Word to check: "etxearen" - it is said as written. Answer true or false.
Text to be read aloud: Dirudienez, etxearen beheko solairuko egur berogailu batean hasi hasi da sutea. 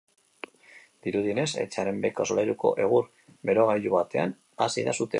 true